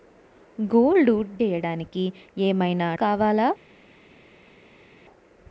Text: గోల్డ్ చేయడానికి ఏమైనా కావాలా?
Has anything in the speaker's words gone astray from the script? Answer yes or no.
no